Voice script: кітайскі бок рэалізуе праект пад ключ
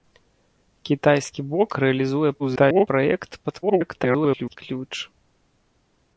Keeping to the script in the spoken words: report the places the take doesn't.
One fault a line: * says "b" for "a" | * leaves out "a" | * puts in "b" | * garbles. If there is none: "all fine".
* garbles
* garbles